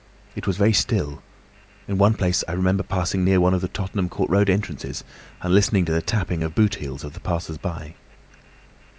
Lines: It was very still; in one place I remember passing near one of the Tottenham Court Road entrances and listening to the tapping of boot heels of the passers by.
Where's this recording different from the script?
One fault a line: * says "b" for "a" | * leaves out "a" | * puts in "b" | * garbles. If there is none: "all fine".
all fine